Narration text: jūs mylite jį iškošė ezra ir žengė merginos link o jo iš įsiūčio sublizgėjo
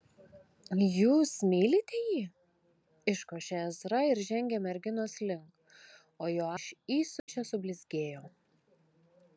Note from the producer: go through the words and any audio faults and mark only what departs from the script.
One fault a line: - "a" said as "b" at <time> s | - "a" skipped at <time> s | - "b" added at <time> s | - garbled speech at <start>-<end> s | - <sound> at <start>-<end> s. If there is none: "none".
- dropout at 7.2-7.3 s